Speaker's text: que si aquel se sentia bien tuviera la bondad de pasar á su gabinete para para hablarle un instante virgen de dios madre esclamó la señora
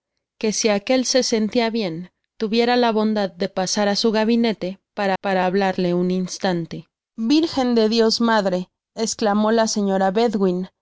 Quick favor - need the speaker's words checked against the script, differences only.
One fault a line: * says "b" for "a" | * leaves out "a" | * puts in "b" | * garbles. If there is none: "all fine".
all fine